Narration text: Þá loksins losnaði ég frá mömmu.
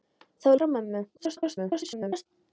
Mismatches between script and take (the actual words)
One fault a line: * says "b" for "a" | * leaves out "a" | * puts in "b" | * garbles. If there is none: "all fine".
* leaves out "loksins losnaði ég"
* garbles